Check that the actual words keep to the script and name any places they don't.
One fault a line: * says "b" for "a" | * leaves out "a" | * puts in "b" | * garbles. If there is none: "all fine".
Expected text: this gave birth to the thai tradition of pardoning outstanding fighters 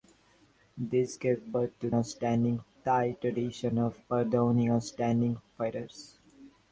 * says "outstanding" for "the"